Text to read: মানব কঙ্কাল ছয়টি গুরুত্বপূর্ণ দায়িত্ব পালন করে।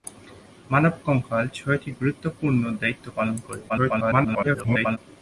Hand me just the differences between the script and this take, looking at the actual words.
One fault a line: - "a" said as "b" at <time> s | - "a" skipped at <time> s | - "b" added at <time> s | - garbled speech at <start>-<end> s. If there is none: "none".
- garbled speech at 3.7-5.0 s